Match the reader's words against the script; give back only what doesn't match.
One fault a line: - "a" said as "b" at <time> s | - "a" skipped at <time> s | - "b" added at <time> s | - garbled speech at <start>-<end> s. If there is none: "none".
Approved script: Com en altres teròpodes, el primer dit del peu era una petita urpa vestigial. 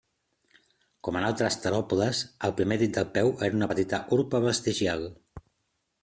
none